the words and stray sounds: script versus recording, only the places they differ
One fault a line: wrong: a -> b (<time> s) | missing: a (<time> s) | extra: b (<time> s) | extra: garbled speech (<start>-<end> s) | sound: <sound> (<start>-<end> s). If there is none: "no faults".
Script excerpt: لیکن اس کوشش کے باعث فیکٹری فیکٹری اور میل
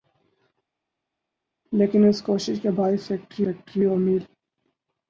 no faults